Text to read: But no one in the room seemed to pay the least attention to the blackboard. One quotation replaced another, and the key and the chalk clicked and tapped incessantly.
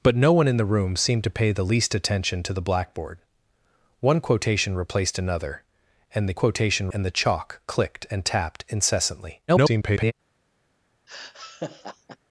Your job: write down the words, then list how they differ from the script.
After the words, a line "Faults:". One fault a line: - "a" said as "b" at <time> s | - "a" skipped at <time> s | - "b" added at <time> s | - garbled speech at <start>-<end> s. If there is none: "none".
But no one in the room seemed to pay the least attention to the blackboard. One quotation replaced another, and the quotation and the chalk clicked and tapped incessantly. [garbled]
Faults:
- "key" said as "quotation" at 6.3 s
- garbled speech at 9.5-10.1 s